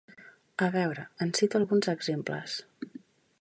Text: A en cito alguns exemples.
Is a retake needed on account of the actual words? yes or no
yes